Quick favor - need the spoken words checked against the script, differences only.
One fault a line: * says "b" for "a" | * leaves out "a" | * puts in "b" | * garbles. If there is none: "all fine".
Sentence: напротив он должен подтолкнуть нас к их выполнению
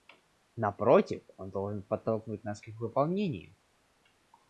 all fine